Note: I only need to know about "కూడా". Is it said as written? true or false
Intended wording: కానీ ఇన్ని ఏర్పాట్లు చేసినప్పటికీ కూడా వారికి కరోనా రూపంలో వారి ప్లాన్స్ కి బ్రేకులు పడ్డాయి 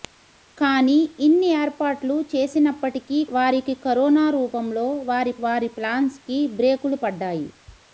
false